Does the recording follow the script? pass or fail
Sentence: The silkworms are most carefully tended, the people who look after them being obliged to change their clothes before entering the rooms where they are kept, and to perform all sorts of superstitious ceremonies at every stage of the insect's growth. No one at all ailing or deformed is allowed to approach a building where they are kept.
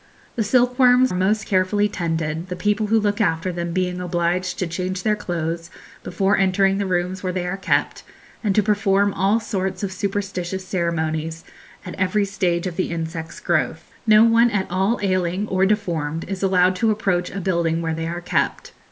fail